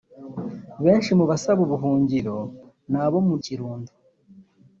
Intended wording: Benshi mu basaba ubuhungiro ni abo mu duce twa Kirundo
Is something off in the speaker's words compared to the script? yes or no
yes